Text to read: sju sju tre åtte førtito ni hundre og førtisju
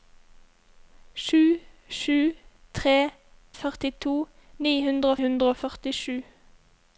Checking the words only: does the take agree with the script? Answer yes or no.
no